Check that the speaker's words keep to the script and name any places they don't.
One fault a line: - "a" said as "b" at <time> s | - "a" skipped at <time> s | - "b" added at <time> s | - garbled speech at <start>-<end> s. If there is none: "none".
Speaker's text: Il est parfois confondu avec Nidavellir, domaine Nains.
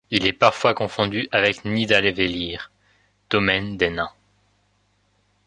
- "des" added at 3.8 s